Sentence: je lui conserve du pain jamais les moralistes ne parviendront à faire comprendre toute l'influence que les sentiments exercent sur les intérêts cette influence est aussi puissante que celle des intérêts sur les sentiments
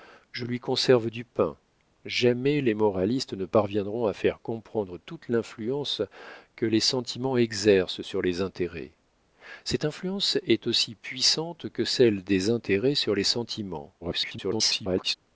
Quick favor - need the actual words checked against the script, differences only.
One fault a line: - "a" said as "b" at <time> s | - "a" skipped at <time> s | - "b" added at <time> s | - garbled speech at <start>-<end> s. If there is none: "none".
- garbled speech at 14.0-15.1 s